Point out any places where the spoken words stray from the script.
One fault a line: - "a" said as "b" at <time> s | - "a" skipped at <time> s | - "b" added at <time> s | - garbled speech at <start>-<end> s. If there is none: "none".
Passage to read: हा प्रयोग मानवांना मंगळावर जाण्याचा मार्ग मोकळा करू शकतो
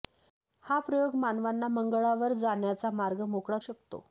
- "करू" skipped at 3.6 s